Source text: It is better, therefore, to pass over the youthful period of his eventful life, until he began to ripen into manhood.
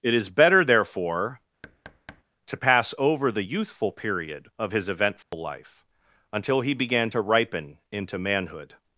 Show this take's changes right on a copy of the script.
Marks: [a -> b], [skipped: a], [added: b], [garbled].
It is better, therefore, to pass over the youthful period of his eventful life, until he began to ripen into manhood.